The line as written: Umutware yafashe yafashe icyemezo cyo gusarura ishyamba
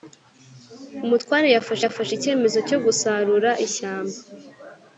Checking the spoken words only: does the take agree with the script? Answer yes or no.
yes